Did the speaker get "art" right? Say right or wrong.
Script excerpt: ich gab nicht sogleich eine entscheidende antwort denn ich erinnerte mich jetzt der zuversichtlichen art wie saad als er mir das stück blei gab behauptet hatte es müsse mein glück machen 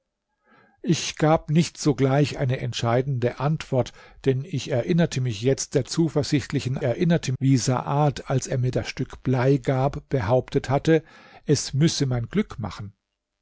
wrong